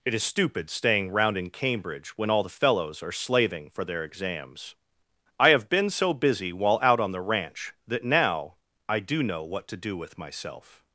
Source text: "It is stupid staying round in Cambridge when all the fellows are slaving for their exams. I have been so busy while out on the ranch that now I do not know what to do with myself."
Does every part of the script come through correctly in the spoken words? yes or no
no